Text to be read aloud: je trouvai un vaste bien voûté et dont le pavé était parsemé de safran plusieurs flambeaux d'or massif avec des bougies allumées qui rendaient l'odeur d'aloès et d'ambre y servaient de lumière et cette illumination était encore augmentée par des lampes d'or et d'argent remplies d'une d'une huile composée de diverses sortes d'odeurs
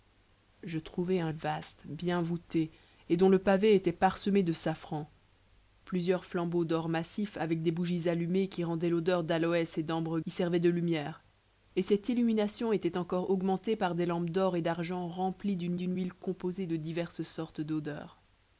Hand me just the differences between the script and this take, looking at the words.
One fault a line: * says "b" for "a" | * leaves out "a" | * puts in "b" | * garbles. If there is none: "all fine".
all fine